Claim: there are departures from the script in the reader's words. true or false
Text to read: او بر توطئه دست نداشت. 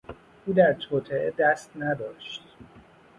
true